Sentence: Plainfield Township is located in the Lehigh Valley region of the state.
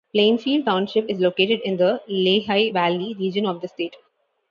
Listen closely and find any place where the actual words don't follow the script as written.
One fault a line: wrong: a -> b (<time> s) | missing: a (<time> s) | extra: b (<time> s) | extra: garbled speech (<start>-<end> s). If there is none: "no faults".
no faults